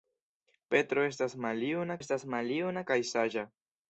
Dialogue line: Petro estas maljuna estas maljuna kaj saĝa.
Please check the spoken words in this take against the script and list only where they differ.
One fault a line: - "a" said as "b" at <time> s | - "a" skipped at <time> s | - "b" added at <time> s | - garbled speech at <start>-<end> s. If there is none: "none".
none